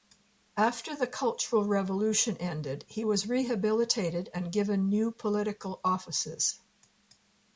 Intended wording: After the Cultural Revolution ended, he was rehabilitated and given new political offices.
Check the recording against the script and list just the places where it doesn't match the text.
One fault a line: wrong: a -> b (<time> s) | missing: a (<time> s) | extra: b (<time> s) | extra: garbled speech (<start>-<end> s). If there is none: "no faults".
no faults